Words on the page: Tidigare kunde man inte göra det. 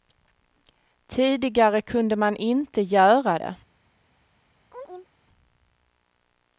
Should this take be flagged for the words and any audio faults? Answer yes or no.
yes